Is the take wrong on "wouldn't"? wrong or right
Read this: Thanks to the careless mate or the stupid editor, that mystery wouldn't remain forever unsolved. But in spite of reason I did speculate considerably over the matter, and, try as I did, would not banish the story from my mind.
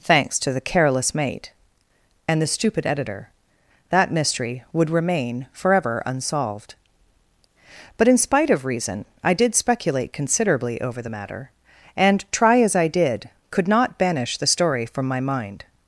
wrong